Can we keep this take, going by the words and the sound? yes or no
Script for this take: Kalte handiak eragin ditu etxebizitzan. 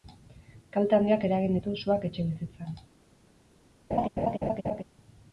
no